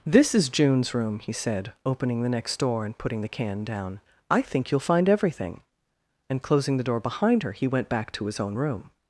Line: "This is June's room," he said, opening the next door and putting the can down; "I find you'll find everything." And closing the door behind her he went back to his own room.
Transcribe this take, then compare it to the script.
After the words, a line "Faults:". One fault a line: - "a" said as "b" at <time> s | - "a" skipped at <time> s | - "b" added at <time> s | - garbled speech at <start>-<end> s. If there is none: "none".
"This is June's room," he said, opening the next door and putting the can down; "I think you'll find everything." And closing the door behind her he went back to his own room.
Faults:
- "find" said as "think" at 4.4 s